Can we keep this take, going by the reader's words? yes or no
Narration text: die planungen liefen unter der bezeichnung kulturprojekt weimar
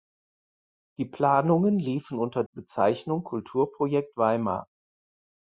no